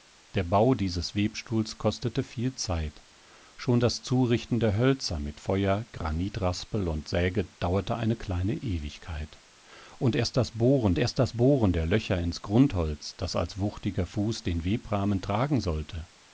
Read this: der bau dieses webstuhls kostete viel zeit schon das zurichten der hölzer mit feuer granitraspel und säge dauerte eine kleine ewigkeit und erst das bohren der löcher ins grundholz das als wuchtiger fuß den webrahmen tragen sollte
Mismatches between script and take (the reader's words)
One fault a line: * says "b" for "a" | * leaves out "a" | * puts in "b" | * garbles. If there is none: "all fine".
* puts in "erst das bohren"